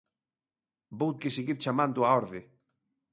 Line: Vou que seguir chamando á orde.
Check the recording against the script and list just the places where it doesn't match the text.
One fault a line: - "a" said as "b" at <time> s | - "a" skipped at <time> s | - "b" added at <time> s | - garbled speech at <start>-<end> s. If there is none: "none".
none